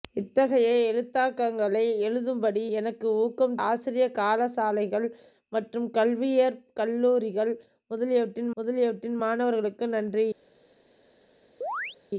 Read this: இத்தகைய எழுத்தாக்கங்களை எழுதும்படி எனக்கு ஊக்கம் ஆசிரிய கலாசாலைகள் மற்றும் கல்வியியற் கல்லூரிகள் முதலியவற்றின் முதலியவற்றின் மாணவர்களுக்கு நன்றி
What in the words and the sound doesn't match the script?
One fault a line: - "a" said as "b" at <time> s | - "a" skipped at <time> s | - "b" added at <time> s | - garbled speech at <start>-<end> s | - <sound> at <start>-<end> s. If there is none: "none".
- chirp at 11.6-12.0 s